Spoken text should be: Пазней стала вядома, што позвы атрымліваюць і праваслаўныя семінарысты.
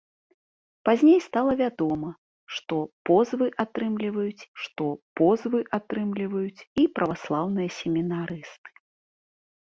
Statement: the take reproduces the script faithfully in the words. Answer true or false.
false